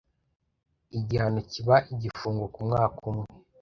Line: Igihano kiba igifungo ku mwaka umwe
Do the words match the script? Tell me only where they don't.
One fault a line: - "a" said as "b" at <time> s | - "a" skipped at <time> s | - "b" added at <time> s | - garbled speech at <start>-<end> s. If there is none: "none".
none